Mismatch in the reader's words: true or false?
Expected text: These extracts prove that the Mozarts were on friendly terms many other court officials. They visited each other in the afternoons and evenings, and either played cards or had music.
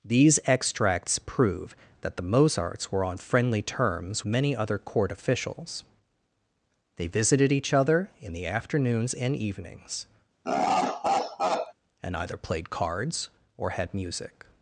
false